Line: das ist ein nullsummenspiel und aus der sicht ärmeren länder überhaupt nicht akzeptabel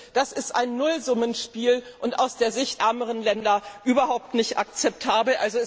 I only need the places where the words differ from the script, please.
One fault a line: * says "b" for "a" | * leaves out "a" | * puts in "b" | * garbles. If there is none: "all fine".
all fine